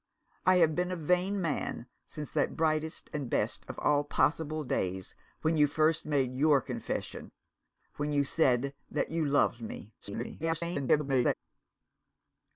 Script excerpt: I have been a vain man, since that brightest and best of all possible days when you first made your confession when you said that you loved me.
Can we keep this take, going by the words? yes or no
no